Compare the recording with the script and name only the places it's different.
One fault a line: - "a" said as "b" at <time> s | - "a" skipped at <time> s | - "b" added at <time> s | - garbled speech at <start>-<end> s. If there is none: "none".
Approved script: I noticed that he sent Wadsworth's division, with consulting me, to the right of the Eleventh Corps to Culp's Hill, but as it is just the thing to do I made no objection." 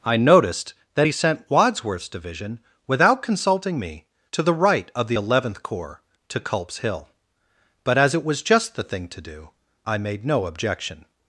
- "with" said as "without" at 2.9 s
- "is" said as "was" at 8.2 s